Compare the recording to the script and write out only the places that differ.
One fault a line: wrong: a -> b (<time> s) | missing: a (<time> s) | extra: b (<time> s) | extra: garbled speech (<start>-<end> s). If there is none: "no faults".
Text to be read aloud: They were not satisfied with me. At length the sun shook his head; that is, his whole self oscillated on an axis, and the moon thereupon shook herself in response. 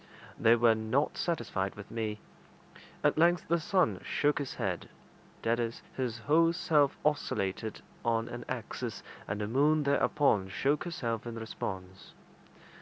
no faults